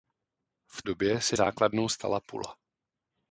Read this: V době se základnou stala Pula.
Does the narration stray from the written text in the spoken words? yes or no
no